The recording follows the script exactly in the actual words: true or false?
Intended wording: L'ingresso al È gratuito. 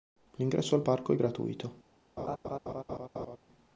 false